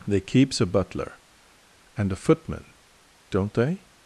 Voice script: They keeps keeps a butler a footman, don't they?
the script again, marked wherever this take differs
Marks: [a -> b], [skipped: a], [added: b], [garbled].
They keeps [skipped: keeps] a butler [added: and] a footman, don't they?